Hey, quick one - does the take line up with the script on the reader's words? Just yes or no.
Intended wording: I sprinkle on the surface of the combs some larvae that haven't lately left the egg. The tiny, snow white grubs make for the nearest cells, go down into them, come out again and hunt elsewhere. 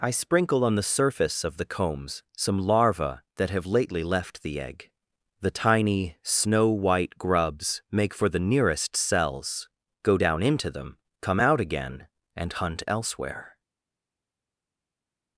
no